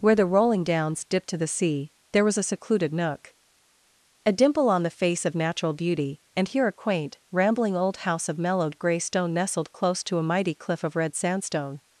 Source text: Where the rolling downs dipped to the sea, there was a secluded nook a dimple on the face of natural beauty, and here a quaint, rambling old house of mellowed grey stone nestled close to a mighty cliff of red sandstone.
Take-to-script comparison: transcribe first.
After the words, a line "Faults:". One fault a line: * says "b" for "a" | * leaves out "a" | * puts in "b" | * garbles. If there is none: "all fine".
Where the rolling downs dipped to the sea, there was a secluded nook a dimple on the face of natural beauty, and here a quaint, rambling old house of mellowed grey stone nestled close to a mighty cliff of red sandstone.
Faults:
all fine